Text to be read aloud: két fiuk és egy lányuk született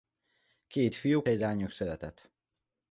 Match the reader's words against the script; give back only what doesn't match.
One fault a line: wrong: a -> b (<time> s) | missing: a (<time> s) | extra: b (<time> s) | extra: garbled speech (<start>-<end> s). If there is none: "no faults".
missing: és (1.3 s)